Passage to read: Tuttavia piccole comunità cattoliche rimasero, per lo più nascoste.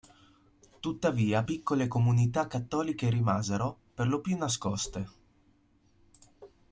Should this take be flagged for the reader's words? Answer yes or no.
no